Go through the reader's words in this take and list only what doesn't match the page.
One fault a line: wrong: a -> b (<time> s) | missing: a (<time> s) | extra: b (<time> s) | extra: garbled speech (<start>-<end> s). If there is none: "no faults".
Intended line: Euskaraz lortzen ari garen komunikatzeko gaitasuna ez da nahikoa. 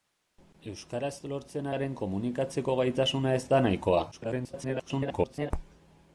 missing: ari (1.7 s)
extra: garbled speech (4.1-5.5 s)